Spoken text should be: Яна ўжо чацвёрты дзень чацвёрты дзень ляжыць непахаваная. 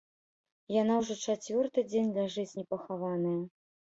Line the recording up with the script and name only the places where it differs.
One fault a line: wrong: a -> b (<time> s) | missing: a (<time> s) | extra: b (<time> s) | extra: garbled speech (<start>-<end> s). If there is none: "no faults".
missing: чацвёрты дзень (2.1 s)